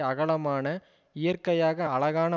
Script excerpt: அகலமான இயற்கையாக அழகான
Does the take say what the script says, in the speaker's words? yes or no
yes